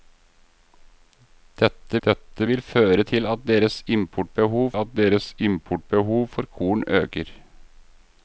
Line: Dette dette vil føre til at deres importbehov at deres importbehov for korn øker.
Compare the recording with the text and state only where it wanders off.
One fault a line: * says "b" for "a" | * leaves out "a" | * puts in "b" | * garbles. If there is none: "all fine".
all fine